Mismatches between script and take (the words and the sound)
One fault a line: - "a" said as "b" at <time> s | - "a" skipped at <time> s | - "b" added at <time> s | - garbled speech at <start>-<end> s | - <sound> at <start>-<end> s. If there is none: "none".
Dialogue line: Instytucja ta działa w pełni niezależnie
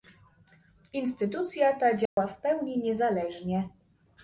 - dropout at 2.1-2.2 s